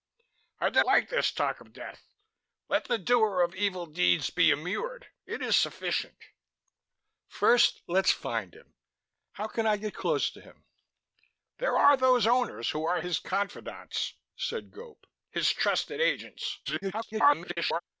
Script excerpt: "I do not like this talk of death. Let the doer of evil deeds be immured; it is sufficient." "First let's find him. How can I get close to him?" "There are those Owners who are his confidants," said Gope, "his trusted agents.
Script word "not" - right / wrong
wrong